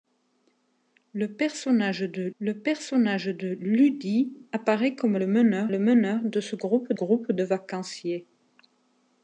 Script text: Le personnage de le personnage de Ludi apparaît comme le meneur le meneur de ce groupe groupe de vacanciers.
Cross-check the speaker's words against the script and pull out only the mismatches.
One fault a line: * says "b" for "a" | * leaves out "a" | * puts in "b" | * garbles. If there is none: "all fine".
all fine